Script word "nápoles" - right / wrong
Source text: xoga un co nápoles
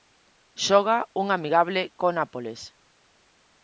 right